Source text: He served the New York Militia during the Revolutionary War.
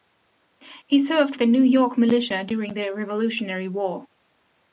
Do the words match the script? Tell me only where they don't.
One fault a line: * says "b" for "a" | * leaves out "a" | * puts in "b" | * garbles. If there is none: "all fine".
all fine